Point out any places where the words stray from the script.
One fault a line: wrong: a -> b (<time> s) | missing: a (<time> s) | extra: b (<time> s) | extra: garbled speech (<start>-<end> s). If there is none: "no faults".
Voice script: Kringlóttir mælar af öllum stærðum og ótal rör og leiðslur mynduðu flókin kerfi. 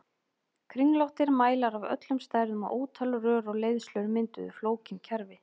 no faults